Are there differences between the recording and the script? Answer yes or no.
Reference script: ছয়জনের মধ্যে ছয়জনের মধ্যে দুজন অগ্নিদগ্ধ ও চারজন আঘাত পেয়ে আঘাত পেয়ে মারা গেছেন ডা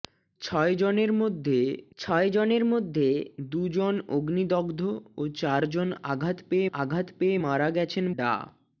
no